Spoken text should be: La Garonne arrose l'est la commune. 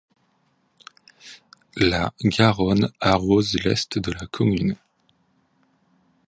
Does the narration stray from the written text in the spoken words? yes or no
yes